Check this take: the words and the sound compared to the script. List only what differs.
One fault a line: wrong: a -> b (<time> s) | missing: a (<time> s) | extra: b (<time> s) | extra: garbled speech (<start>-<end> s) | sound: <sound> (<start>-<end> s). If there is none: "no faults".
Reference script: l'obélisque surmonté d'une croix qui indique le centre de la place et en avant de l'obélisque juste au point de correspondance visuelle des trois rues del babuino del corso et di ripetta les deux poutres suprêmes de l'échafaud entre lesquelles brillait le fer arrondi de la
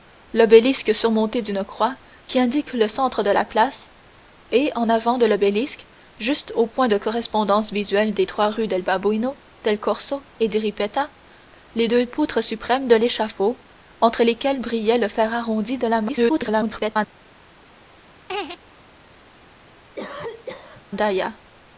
extra: garbled speech (16.1-17.0 s)
sound: laugh (18.3-18.6 s)
sound: cough (20.0-20.8 s)